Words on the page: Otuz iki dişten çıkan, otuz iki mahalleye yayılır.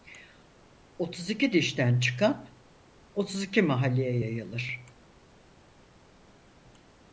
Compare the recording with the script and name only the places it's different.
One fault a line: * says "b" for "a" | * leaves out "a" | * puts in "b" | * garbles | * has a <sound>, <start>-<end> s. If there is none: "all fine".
all fine